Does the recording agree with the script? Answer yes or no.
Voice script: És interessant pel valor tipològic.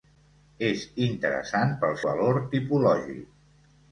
yes